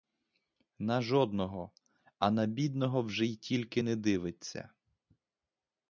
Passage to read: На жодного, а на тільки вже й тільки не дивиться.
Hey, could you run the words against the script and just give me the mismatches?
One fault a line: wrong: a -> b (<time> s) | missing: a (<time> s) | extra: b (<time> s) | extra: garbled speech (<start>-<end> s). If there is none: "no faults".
wrong: тільки -> бідного (2.5 s)